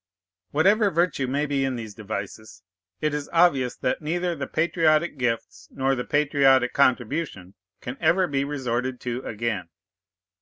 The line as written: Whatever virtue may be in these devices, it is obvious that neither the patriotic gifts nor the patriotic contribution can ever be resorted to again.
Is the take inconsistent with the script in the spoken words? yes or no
no